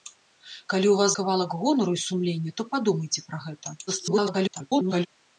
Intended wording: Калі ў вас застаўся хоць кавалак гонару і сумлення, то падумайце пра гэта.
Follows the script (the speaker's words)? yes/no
no